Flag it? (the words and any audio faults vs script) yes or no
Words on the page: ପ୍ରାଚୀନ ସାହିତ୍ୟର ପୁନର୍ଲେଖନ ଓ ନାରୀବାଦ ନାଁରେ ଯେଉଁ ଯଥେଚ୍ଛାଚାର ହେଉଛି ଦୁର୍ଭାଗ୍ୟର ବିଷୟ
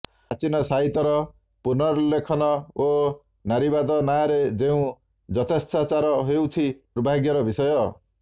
no